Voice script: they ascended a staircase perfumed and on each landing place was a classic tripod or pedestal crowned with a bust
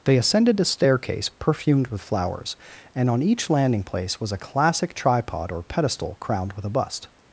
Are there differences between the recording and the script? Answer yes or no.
yes